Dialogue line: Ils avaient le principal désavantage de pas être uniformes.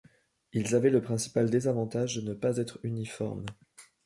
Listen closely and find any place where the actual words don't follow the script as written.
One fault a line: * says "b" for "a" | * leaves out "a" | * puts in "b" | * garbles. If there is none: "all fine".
* puts in "ne"